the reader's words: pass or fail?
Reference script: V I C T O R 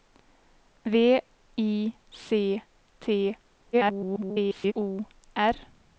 fail